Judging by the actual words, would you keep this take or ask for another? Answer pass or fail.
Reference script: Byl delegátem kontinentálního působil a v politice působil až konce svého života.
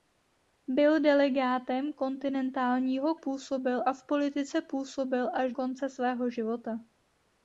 pass